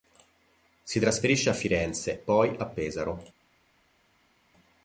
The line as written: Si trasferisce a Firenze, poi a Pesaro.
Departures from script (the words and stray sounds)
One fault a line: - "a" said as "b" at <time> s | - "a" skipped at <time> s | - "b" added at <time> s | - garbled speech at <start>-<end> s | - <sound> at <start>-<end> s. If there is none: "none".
none